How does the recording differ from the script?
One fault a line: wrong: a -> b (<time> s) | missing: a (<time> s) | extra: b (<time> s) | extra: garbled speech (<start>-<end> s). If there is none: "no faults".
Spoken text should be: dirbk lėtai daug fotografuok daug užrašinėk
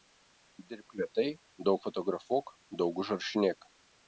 no faults